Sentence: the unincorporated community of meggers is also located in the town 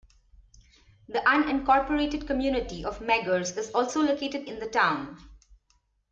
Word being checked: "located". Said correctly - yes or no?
yes